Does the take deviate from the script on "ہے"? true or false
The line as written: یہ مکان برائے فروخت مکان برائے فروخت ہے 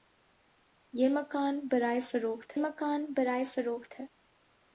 false